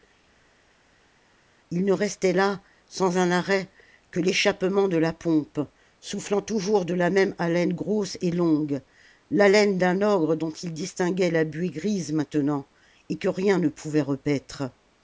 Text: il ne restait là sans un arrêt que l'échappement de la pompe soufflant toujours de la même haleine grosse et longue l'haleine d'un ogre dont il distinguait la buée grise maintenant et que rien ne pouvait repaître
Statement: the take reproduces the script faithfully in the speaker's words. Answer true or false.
true